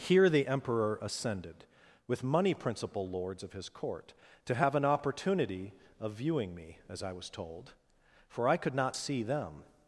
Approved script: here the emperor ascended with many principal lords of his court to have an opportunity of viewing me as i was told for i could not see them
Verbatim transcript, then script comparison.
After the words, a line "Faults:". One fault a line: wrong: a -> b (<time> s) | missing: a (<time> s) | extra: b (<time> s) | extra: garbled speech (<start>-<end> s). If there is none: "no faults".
here the emperor ascended with money principal lords of his court to have an opportunity of viewing me as i was told for i could not see them
Faults:
wrong: many -> money (2.2 s)